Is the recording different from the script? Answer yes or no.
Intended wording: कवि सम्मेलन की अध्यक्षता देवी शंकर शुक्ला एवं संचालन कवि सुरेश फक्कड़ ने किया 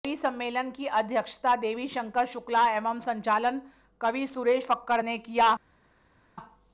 no